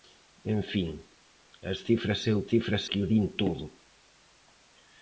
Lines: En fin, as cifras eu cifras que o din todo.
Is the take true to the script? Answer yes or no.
yes